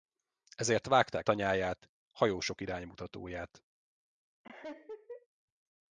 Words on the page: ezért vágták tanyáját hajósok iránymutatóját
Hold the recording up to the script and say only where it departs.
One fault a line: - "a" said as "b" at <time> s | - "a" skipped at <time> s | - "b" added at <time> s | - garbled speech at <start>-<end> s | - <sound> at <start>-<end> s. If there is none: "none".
- laugh at 4.4-5.3 s